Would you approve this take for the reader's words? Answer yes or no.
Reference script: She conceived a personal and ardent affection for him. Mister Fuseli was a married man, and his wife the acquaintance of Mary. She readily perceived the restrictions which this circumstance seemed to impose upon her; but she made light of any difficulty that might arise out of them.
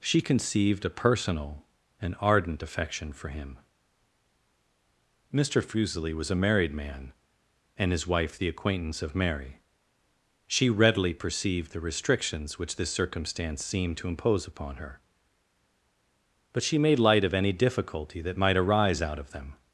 yes